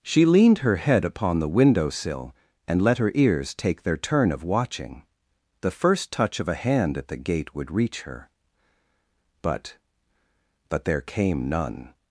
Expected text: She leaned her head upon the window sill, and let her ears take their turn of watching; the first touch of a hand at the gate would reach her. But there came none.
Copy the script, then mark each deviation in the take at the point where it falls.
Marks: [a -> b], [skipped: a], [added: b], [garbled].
She leaned her head upon the window sill, and let her ears take their turn of watching; the first touch of a hand at the gate would reach her. But [added: But] there came none.